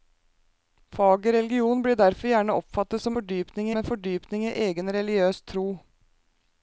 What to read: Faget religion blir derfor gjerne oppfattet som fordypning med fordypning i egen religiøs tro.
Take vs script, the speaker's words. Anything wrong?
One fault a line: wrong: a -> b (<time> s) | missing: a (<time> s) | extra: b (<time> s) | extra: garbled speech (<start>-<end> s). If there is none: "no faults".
no faults